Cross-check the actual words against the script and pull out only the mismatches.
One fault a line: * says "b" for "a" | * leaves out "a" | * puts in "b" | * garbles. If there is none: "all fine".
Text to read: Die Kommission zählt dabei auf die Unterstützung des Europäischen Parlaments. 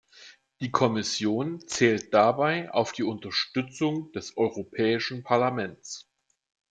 all fine